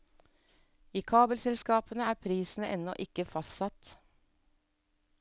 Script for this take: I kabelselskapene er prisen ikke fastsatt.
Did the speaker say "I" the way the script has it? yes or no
yes